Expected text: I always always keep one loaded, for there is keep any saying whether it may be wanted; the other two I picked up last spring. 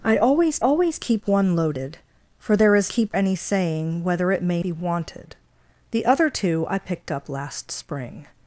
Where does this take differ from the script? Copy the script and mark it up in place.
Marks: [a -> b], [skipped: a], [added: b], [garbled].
I always always keep one loaded, for there is keep any saying whether it may be wanted; the other two I picked up last spring.